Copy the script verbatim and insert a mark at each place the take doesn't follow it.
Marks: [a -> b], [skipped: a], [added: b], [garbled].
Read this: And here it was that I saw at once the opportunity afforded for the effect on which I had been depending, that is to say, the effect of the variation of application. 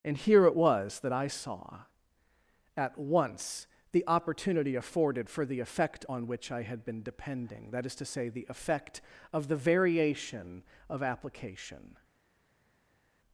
And here it was that I saw at once the opportunity afforded for the effect on which I had been depending, that is to say, the effect of the variation of application.